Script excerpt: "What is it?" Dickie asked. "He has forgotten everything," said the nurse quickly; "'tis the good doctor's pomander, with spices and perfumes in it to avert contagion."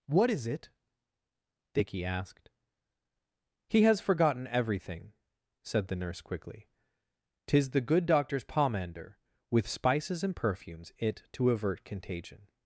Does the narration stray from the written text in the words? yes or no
yes